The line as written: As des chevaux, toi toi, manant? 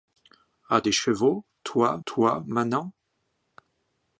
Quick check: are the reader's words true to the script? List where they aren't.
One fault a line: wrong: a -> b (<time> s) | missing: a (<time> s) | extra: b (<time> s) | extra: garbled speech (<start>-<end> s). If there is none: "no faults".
no faults